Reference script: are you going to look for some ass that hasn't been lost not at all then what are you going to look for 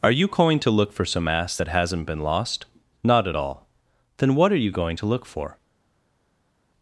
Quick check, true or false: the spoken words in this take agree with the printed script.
true